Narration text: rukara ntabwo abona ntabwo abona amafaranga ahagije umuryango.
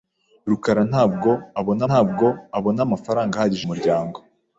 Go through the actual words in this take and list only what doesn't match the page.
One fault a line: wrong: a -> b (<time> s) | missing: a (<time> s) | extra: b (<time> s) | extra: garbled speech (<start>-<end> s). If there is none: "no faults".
no faults